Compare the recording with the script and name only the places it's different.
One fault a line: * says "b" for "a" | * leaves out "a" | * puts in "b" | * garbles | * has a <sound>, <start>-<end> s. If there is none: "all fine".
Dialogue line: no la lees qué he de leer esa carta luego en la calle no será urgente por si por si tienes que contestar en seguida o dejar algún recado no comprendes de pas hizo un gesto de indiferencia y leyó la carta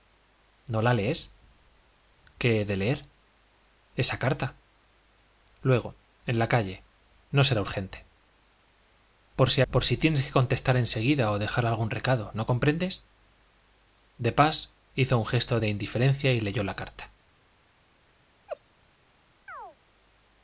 * has a laugh, 18.5-18.6 s
* has a chirp, 19.5-19.8 s